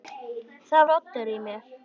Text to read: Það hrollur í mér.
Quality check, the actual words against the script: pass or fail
pass